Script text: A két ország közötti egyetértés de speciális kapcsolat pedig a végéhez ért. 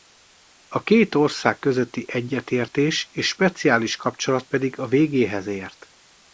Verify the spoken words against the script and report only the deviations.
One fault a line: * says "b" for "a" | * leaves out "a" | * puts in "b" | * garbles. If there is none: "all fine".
* says "és" for "de"